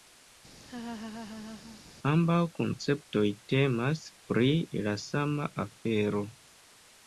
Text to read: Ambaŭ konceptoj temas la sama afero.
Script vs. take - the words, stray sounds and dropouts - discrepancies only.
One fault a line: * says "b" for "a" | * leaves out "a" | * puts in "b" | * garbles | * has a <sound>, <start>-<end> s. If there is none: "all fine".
* has a laugh, 0.6-1.8 s
* puts in "pri"